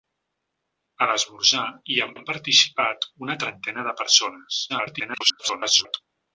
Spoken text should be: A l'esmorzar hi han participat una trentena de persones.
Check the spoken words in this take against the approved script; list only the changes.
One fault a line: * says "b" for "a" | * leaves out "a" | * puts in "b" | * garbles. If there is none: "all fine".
* puts in "han"
* garbles